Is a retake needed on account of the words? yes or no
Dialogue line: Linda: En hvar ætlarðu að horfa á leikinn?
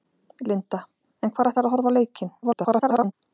yes